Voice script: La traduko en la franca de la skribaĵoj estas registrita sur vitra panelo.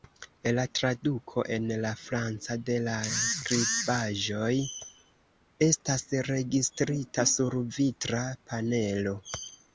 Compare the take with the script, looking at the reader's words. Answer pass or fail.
pass